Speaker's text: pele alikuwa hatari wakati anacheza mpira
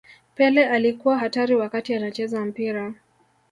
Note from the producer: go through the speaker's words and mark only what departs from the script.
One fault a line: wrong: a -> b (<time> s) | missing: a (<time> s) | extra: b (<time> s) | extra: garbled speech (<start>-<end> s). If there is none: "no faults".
no faults